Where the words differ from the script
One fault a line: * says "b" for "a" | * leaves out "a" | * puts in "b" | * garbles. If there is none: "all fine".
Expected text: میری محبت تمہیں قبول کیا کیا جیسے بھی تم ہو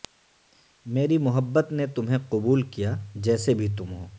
* puts in "نے"
* leaves out "کیا"